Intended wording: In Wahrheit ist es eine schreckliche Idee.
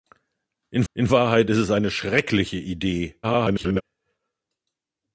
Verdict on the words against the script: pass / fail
fail